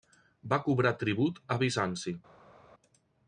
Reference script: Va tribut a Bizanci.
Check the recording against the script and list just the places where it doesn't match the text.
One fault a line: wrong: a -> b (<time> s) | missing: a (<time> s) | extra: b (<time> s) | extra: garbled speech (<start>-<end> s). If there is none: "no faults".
extra: cobrar (0.7 s)